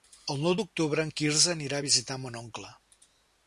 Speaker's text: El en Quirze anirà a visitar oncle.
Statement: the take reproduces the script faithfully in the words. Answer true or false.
false